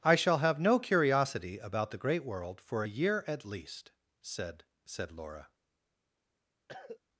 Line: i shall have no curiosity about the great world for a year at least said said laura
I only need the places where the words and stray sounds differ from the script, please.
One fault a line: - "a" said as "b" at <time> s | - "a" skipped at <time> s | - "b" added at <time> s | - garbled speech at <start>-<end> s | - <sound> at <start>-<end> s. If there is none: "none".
- cough at 6.7-7.0 s